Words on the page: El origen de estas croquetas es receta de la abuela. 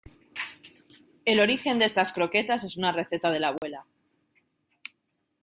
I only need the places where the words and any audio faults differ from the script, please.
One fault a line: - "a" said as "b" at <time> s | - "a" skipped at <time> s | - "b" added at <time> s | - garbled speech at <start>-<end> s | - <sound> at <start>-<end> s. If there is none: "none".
- "una" added at 2.8 s
- dropout at 3.6-3.6 s